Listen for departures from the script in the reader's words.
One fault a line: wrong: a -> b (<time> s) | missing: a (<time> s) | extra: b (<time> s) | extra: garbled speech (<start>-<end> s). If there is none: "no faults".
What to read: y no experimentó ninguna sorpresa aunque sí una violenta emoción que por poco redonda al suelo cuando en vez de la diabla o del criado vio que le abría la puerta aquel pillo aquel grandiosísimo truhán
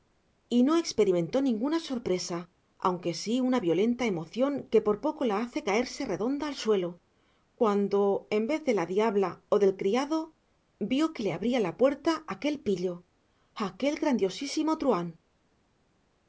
extra: la hace caerse (5.2 s)